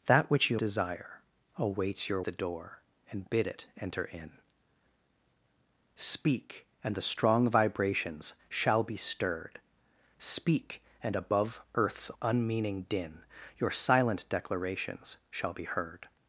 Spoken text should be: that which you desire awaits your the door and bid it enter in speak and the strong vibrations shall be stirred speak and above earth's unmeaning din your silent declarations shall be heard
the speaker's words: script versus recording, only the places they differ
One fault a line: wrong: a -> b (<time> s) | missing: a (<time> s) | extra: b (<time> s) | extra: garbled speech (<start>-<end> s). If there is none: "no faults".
no faults